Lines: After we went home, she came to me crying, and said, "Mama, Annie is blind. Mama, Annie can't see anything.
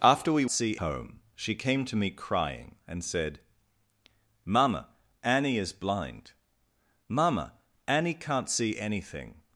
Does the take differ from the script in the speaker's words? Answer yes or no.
yes